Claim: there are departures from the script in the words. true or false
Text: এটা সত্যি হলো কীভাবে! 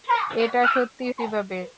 true